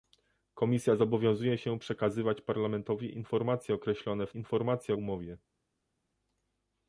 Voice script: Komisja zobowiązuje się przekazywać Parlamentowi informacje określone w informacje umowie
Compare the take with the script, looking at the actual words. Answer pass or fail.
pass